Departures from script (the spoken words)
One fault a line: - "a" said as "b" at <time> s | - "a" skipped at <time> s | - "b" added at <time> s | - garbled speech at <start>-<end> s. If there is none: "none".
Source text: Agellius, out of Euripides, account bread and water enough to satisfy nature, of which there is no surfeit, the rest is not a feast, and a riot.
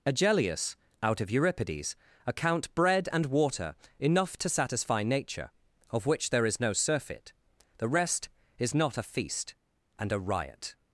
none